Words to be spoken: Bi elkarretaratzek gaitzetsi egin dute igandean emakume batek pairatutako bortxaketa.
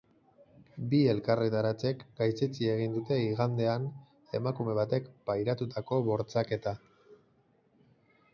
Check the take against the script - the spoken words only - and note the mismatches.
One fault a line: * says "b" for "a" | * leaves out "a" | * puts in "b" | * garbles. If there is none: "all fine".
all fine